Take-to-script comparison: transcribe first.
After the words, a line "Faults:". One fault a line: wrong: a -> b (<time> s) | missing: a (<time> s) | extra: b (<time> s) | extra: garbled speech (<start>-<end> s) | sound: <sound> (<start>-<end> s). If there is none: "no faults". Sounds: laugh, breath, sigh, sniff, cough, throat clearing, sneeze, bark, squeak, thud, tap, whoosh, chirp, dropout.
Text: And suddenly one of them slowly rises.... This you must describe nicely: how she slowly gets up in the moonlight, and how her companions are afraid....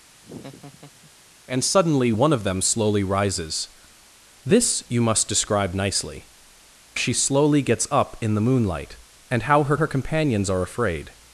And suddenly one of them slowly rises.... This you must describe nicely: she slowly gets up in the moonlight, and how her her companions are afraid....
Faults:
sound: laugh (0.1-1.1 s)
missing: how (6.3 s)
extra: her (9.7 s)